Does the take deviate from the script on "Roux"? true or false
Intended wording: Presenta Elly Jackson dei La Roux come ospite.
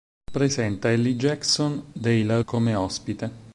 true